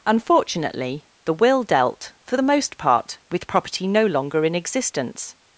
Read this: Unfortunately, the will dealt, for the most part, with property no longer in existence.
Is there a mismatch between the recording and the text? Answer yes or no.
no